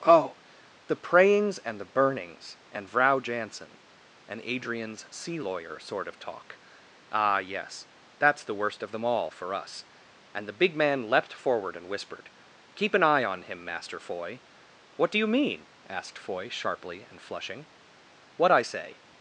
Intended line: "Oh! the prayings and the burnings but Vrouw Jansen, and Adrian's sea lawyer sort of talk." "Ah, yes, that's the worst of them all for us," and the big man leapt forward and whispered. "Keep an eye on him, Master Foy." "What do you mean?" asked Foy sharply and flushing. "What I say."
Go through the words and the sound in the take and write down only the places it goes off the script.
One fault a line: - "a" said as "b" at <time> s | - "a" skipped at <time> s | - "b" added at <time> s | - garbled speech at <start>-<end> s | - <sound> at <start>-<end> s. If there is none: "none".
- "but" said as "and" at 2.7 s